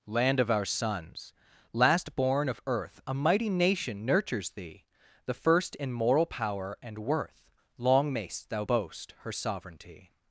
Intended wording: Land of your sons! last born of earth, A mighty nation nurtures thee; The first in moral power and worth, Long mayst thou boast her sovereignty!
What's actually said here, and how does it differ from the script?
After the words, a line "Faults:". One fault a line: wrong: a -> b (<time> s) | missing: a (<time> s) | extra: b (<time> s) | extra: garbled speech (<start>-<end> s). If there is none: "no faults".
Land of our sons! last born of earth, A mighty nation nurtures thee; The first in moral power and worth, Long mayst thou boast her sovereignty!
Faults:
wrong: your -> our (0.5 s)